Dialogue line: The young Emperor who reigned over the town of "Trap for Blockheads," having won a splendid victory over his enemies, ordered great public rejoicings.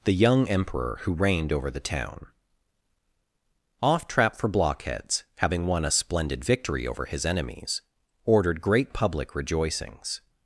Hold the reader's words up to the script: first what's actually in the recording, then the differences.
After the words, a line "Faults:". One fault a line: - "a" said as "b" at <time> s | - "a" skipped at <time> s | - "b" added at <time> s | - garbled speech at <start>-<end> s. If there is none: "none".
The young Emperor who reigned over the town off "Trap for Blockheads," having won a splendid victory over his enemies, ordered great public rejoicings.
Faults:
- "of" said as "off" at 3.8 s